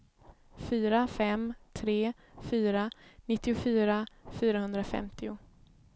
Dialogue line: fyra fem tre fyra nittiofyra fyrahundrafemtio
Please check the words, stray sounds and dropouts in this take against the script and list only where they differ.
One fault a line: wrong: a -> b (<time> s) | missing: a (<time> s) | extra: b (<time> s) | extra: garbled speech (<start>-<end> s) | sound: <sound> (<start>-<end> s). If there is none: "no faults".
no faults